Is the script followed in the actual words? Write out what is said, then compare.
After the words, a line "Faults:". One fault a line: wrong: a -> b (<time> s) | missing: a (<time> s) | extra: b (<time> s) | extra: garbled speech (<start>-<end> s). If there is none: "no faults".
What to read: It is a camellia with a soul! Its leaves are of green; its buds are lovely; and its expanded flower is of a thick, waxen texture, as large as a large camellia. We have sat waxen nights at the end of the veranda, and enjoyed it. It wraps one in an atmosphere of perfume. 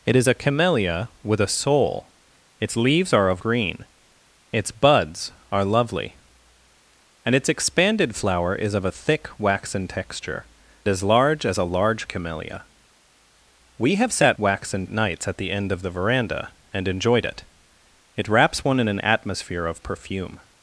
It is a camellia with a soul! Its leaves are of green; its buds are lovely; and its expanded flower is of a thick, waxen texture, as large as a large camellia. We have sat waxen nights at the end of the veranda, and enjoyed it. It wraps one in an atmosphere of perfume.
Faults:
no faults